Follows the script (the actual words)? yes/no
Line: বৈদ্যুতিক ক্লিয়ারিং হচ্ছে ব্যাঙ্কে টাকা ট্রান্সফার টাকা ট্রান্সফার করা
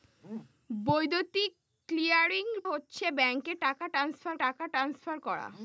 yes